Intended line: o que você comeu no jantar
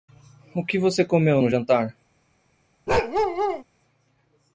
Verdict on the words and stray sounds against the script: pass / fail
fail